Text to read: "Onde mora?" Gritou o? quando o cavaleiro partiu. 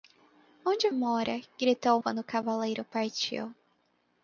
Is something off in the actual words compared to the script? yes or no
no